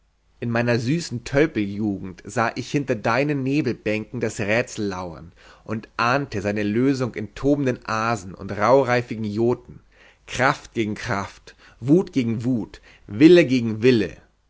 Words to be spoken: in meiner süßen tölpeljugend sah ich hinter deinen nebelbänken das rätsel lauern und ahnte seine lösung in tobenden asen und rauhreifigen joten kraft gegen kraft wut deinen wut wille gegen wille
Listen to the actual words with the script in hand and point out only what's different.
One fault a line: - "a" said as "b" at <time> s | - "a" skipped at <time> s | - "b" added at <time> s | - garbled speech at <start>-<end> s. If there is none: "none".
- "deinen" said as "gegen" at 12.1 s